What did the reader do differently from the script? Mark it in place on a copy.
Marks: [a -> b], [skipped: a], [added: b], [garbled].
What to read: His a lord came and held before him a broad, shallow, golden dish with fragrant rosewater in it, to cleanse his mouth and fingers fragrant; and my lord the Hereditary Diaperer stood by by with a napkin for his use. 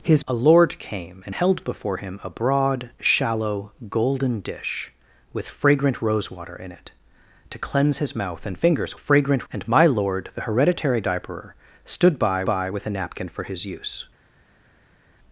His a lord came and held before him a broad, shallow, golden dish with fragrant rosewater in it, to cleanse his mouth and fingers fragrant; and my lord the Hereditary Diaperer stood by by with a napkin for his use.